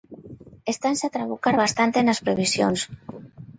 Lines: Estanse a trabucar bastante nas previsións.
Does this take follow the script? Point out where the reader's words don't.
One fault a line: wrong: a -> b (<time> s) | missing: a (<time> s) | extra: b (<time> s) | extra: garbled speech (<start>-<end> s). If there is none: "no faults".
no faults